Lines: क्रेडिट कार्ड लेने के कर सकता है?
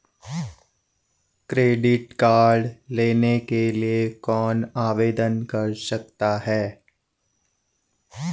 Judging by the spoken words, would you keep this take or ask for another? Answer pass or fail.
fail